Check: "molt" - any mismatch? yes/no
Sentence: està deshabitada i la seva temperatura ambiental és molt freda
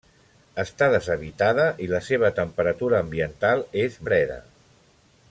yes